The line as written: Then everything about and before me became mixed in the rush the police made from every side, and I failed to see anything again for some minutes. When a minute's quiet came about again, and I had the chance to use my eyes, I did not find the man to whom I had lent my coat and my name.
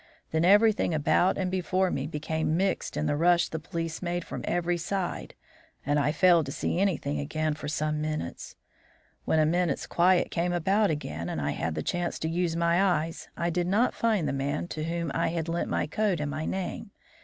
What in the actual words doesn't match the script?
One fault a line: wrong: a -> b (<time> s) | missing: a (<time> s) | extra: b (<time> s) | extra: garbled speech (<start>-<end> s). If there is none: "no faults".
no faults